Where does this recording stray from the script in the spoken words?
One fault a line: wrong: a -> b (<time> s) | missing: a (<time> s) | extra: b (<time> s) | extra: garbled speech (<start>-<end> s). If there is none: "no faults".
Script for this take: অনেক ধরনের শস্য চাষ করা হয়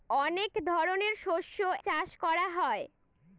no faults